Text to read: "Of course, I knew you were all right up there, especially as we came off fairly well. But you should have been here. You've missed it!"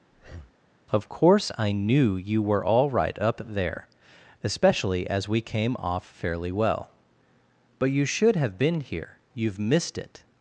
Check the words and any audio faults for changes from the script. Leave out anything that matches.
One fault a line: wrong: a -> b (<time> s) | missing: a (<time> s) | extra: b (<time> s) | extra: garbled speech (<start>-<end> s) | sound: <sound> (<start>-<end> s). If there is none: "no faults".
sound: breath (0.1-0.6 s)